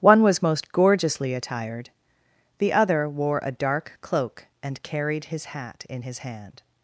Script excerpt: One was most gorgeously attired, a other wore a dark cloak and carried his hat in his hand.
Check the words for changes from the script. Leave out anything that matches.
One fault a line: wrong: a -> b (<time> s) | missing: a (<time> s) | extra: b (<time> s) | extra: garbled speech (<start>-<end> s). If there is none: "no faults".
wrong: a -> the (2.6 s)